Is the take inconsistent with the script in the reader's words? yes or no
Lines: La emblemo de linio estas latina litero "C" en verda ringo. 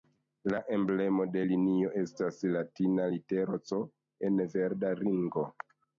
no